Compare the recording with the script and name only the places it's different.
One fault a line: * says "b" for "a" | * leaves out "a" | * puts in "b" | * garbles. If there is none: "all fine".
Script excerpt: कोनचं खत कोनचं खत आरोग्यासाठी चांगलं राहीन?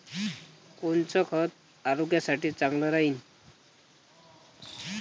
* leaves out "कोनचं खत"